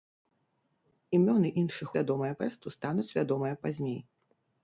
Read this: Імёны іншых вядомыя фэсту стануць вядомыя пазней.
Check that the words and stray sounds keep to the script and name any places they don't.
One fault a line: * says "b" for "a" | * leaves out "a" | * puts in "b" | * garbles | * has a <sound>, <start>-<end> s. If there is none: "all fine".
all fine